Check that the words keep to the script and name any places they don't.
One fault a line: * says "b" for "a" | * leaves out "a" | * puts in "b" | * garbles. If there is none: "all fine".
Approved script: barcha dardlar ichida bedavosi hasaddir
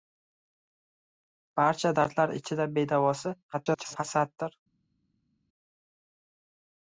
* garbles